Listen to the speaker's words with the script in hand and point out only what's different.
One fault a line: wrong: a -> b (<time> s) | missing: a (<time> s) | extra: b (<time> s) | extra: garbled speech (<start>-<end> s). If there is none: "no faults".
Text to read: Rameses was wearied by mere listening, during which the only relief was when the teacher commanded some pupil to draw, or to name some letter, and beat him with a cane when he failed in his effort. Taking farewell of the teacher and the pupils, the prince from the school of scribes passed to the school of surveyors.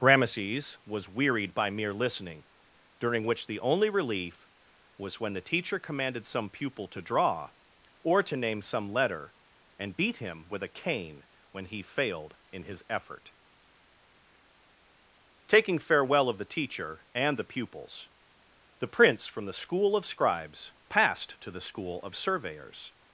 no faults